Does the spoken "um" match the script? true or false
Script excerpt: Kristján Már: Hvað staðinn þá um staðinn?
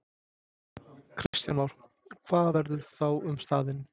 true